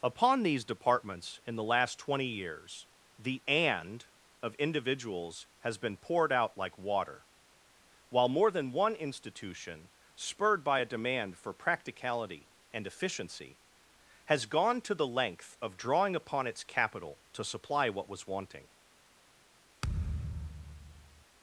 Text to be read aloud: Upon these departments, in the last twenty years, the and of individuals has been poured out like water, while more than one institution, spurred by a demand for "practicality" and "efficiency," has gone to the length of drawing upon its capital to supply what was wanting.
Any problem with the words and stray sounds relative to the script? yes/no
yes